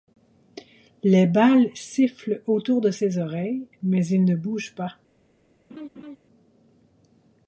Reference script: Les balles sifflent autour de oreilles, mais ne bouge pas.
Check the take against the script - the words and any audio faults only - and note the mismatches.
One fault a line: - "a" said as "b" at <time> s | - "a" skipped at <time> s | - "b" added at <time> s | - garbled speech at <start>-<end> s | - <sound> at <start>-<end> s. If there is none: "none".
- "ses" added at 2.9 s
- "il" added at 4.1 s
- laugh at 5.7-6.2 s